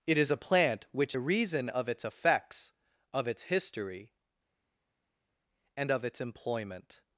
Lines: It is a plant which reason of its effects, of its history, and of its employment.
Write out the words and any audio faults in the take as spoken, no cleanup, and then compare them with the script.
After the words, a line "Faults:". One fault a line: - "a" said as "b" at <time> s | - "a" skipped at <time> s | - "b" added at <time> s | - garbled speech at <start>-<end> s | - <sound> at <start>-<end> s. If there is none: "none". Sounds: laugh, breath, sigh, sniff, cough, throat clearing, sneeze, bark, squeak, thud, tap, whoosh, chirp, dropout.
It is a plant which reason of its effects, of its history, and of its employment.
Faults:
none